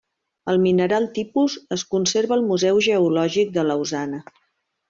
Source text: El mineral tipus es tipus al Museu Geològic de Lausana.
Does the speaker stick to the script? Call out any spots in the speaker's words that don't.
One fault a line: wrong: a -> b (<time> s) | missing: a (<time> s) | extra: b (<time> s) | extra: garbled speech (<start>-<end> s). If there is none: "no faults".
wrong: tipus -> conserva (2.0 s)